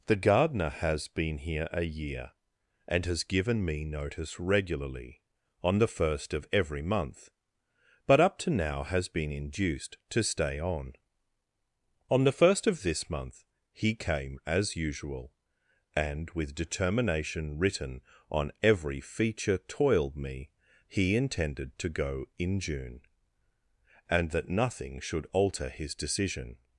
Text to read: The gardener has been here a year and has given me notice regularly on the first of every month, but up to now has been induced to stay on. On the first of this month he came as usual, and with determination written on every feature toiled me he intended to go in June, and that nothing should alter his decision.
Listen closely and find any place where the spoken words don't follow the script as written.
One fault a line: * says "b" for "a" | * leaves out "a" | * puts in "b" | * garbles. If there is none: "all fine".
all fine